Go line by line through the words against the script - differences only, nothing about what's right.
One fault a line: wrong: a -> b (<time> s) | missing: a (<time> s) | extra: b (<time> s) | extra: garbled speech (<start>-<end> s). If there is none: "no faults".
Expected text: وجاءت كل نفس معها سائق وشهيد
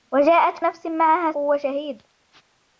missing: كل (0.6 s)
missing: سائق (1.3 s)